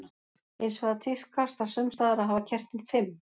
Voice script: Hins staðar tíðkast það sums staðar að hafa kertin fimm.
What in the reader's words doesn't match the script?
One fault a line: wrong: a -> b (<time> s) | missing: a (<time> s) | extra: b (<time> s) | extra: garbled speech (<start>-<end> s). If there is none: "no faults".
wrong: staðar -> vegar (0.8 s)